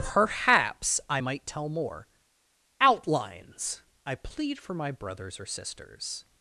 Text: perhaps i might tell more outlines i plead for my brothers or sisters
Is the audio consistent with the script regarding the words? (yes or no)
yes